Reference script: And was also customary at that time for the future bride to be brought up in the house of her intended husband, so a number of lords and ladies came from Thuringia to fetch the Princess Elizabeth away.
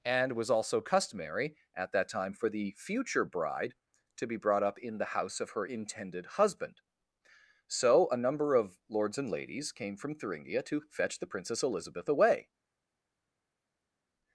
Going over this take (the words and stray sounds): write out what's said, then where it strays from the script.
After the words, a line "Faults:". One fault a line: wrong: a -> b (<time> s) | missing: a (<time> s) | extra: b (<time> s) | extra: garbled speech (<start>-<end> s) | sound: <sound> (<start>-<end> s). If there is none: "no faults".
And was also customary at that time for the future bride to be brought up in the house of her intended husband, so a number of lords and ladies came from Thuringia to fetch the Princess Elizabeth away.
Faults:
no faults